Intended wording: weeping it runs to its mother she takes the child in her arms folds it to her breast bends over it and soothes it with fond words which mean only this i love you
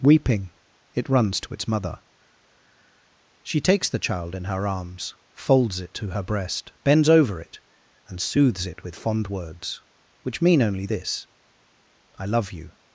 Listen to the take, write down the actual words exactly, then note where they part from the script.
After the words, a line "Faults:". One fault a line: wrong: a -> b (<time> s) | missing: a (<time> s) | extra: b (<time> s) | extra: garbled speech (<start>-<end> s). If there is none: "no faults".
weeping it runs to its mother she takes the child in her arms folds it to her breast bends over it and soothes it with fond words which mean only this i love you
Faults:
no faults